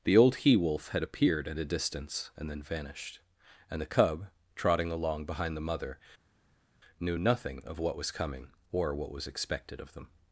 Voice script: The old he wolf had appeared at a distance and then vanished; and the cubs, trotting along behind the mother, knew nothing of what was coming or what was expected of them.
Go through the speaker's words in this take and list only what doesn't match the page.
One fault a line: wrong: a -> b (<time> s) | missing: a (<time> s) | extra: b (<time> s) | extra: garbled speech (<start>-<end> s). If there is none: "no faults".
wrong: cubs -> cub (3.9 s)